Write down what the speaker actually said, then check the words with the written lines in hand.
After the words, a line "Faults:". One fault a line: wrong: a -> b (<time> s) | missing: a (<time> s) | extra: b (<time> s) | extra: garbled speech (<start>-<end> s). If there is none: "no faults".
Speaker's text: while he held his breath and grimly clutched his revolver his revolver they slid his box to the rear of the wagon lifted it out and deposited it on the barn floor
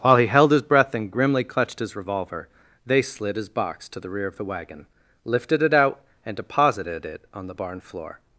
while he held his breath and grimly clutched his revolver they slid his box to the rear of the wagon lifted it out and deposited it on the barn floor
Faults:
missing: his revolver (2.5 s)